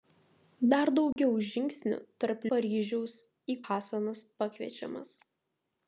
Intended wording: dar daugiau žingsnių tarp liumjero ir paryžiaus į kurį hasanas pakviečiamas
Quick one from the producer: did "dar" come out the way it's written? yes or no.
yes